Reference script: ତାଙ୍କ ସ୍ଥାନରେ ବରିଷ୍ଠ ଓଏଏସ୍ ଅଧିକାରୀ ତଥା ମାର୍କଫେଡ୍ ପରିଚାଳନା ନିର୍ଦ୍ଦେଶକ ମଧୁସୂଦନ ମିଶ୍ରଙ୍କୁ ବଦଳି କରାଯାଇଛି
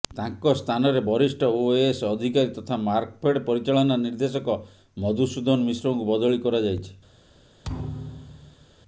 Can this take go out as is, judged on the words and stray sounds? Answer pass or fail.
fail